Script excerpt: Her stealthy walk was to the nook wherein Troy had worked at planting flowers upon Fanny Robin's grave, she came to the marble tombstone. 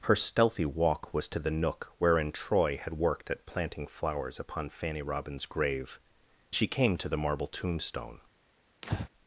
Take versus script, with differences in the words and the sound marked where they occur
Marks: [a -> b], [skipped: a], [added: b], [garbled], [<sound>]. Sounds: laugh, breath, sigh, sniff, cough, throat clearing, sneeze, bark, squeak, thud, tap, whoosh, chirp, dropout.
Her stealthy walk was to the nook wherein Troy had worked at planting flowers upon Fanny Robin's grave, she came to the marble tombstone. [breath]